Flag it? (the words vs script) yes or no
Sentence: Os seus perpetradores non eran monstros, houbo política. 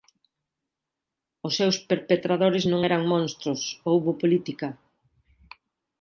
no